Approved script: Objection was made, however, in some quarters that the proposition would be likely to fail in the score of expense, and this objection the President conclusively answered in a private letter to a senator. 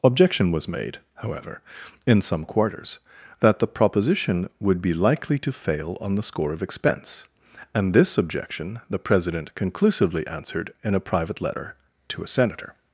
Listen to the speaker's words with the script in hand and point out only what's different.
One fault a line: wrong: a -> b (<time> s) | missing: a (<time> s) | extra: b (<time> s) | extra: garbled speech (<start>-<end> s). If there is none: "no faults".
wrong: in -> on (6.0 s)